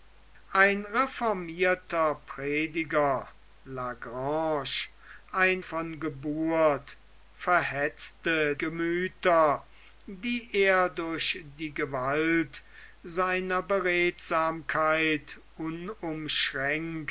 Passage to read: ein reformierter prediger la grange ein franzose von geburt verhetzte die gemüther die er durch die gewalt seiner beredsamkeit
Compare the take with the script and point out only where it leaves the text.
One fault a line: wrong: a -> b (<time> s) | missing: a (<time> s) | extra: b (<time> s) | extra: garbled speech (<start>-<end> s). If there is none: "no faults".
missing: franzose (5.6 s)
missing: die (8.6 s)